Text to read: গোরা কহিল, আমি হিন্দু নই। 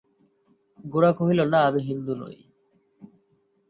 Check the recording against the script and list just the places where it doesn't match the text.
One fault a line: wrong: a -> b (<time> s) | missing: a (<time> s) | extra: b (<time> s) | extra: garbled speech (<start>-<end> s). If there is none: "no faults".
extra: না (1.4 s)